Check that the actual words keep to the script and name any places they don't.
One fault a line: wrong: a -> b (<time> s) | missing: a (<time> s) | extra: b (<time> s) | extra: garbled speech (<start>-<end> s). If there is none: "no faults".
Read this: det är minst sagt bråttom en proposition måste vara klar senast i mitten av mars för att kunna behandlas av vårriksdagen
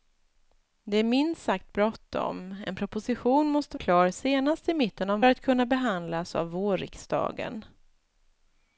missing: vara (3.8 s)
missing: mars för (5.2 s)